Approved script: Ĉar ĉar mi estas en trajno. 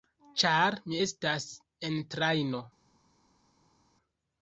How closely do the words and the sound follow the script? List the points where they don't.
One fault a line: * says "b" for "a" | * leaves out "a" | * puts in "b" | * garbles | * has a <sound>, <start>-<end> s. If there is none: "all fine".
* leaves out "ĉar"